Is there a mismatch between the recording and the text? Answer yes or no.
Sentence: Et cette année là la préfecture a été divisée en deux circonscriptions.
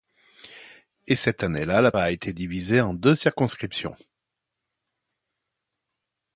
yes